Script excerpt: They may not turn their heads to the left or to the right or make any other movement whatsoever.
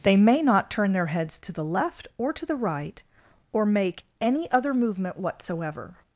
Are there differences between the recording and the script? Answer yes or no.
no